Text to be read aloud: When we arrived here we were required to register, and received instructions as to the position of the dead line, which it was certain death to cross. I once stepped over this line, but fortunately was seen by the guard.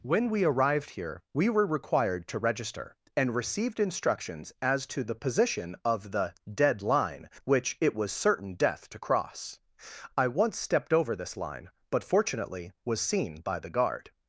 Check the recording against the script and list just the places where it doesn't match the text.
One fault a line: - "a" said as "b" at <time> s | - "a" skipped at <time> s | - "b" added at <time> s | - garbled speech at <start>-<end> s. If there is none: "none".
none